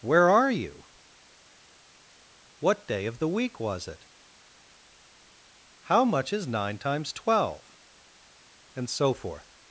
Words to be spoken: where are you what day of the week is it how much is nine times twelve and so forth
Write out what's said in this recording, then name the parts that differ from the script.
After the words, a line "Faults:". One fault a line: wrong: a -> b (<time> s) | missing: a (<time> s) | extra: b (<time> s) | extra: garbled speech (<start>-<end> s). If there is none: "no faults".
where are you what day of the week was it how much is nine times twelve and so forth
Faults:
wrong: is -> was (3.6 s)